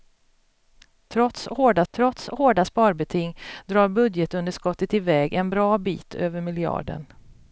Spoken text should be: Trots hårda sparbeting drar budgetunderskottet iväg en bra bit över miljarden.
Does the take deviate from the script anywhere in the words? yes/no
yes